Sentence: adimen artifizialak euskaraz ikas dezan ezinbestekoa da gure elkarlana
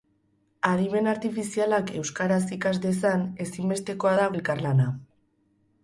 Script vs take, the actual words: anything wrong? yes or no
yes